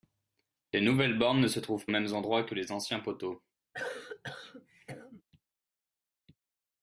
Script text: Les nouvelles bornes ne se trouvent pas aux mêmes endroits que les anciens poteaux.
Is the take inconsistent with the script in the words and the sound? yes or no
yes